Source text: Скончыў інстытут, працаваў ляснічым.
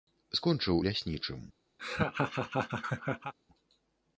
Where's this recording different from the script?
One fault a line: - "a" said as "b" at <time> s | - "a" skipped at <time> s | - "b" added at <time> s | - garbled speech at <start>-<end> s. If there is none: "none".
- "інстытут працаваў" skipped at 0.8 s